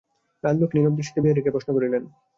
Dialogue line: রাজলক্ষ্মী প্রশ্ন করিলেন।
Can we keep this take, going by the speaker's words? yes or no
no